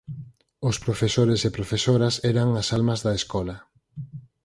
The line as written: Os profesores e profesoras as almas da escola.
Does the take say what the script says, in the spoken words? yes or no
no